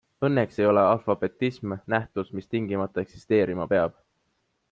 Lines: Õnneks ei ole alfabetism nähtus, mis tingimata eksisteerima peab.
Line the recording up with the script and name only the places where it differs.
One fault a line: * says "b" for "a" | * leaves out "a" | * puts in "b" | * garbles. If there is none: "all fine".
all fine